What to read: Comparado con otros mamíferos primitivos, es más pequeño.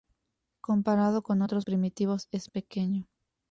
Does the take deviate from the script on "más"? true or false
true